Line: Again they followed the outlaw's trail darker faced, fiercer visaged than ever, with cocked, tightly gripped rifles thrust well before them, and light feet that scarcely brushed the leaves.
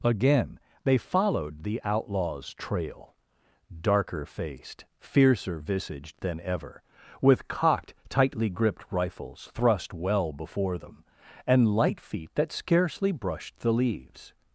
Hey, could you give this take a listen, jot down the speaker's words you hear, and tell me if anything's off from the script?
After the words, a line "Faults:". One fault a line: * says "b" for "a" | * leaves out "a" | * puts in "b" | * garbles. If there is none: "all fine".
Again they followed the outlaw's trail darker faced, fiercer visaged than ever, with cocked, tightly gripped rifles thrust well before them, and light feet that scarcely brushed the leaves.
Faults:
all fine